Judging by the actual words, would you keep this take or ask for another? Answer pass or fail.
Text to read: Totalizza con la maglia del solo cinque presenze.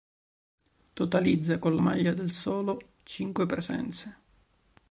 pass